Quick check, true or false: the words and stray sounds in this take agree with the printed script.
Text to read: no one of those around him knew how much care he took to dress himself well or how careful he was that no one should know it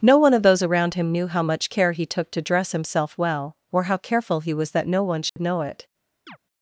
false